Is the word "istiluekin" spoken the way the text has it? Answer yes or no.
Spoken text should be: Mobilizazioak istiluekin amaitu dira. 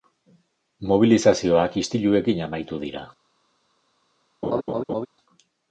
yes